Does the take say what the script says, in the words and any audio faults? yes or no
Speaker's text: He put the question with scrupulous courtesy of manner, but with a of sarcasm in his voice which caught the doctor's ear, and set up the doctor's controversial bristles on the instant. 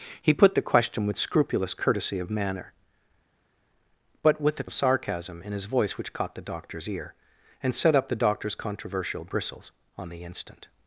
yes